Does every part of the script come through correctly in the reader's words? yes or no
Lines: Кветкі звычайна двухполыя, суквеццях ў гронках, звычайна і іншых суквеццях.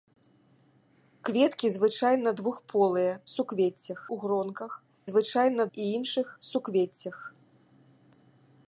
yes